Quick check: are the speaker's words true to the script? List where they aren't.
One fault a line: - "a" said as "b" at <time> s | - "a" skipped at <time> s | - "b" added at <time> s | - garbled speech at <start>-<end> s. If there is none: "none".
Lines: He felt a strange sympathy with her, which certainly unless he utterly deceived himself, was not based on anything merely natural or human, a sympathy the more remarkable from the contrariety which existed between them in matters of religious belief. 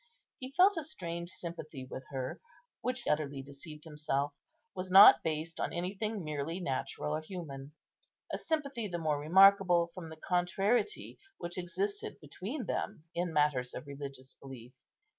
- "certainly unless he" skipped at 3.0 s